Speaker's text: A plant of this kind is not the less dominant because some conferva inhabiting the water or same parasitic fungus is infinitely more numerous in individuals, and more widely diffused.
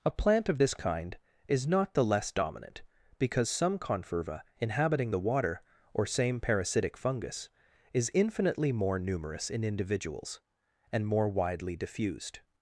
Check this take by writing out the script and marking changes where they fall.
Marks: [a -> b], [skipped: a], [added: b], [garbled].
A plant of this kind is not the less dominant because some conferva inhabiting the water or same parasitic fungus is infinitely more numerous in individuals, and more widely diffused.